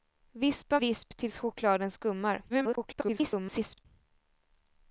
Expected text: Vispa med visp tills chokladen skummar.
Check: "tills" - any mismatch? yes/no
no